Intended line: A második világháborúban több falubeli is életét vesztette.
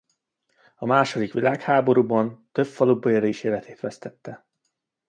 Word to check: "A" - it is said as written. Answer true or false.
true